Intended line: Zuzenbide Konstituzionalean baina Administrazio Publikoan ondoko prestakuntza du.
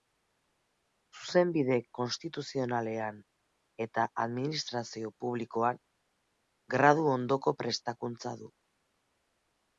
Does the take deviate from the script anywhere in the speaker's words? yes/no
yes